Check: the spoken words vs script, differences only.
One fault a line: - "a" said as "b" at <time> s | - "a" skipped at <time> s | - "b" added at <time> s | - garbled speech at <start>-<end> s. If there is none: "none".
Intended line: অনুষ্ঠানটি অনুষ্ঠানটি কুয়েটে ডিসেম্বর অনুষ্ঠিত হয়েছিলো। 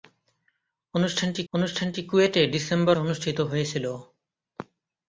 none